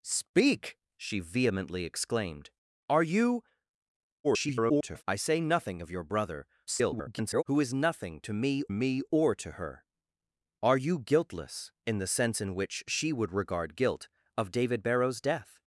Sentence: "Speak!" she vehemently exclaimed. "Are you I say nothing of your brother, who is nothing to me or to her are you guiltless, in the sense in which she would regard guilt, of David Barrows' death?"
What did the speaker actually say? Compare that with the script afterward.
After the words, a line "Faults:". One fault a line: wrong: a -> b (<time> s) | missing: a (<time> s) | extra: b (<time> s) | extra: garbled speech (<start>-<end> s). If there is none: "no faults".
"Speak!" she vehemently exclaimed. "Are you [garbled] I say nothing of your brother, [garbled] who is nothing to me me or to her are you guiltless, in the sense in which she would regard guilt, of David Barrows' death?"
Faults:
extra: garbled speech (4.2-5.0 s)
extra: garbled speech (6.7-7.4 s)
extra: me (8.7 s)